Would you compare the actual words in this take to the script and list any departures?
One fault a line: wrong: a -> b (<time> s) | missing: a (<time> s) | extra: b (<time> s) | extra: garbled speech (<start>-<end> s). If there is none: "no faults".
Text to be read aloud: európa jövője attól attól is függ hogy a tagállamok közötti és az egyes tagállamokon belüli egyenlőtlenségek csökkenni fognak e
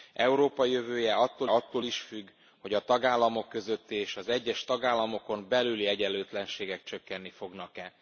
no faults